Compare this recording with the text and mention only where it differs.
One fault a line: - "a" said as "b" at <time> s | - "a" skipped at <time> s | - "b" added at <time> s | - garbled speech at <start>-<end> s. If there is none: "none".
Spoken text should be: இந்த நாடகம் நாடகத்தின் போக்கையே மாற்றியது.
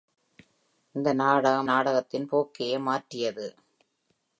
none